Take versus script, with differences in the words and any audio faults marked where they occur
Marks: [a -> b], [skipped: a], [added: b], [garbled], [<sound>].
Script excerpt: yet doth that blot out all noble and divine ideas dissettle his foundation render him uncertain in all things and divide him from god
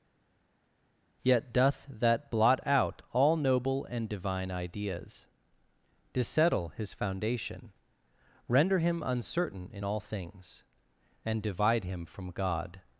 yet doth that blot out all noble and divine ideas dissettle his foundation render him uncertain in all things and divide him from god